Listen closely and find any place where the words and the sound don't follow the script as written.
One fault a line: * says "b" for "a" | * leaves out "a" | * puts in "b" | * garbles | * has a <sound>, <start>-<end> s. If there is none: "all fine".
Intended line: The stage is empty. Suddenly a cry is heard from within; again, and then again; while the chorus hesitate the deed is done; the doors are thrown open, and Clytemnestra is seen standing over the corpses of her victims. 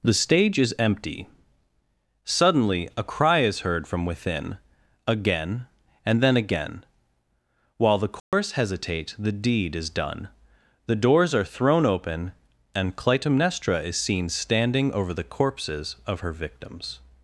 * has a dropout, 8.2-8.3 s